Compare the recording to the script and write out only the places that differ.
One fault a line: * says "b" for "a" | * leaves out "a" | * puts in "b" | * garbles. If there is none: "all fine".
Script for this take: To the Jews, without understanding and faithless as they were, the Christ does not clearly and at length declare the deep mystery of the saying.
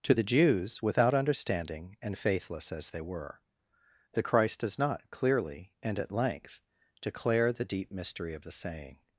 all fine